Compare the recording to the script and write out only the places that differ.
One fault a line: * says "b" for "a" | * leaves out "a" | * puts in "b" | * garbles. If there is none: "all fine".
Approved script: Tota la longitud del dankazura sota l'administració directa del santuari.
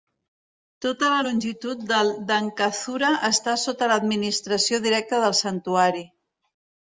* puts in "està"